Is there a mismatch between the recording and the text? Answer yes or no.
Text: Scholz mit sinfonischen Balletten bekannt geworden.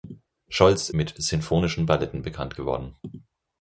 no